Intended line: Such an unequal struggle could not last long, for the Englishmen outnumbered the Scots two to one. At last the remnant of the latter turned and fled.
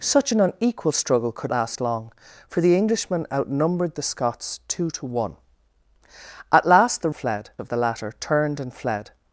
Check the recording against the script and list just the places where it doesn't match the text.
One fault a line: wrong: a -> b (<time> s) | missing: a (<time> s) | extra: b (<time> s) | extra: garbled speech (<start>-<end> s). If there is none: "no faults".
missing: not (1.5 s)
wrong: remnant -> fled (7.1 s)